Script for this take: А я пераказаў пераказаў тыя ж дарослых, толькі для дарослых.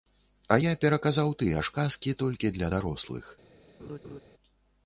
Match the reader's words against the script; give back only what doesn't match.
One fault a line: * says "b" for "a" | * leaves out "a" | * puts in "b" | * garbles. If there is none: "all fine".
* leaves out "пераказаў"
* says "казкі" for "дарослых"